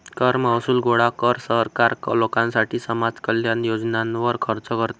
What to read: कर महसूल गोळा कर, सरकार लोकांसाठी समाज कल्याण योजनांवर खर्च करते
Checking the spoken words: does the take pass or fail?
pass